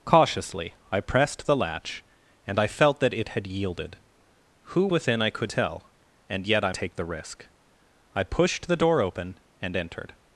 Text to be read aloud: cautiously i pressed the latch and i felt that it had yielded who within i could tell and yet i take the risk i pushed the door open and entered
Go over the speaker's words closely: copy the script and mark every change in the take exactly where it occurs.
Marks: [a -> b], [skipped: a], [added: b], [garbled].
cautiously i pressed the latch and i felt that it had yielded who within i could tell and yet i take the risk i pushed the door open and entered